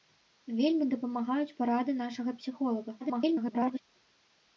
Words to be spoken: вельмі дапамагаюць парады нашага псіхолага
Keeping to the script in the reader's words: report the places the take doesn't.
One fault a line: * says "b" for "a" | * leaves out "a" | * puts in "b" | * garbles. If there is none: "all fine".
* garbles